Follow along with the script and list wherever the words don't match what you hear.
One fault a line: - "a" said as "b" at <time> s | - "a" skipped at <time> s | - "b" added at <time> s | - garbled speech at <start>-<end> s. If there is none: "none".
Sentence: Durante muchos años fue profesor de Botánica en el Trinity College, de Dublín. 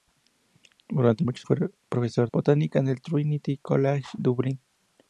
- "años" skipped at 1.4 s
- "de" skipped at 2.3 s
- "de" skipped at 4.1 s